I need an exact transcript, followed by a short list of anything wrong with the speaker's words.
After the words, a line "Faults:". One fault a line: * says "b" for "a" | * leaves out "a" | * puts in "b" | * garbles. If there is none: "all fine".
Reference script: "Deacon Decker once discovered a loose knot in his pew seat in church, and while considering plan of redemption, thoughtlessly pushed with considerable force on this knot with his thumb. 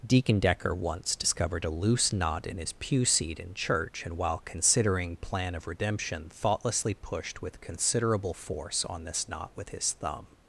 "Deacon Decker once discovered a loose knot in his pew seat in church, and while considering plan of redemption, thoughtlessly pushed with considerable force on this knot with his thumb.
Faults:
all fine